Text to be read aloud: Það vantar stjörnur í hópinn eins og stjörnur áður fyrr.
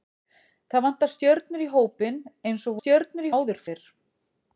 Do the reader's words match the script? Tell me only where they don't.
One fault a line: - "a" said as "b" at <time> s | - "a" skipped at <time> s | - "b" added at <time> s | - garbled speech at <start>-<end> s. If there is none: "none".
none